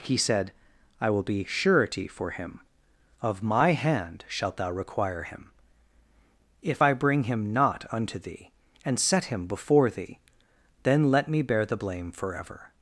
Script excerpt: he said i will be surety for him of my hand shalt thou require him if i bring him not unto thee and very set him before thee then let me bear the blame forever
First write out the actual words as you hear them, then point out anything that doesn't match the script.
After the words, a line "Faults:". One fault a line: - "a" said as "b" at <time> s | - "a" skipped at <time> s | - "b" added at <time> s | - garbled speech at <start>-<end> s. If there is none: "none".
he said i will be surety for him of my hand shalt thou require him if i bring him not unto thee and set him before thee then let me bear the blame forever
Faults:
- "very" skipped at 9.0 s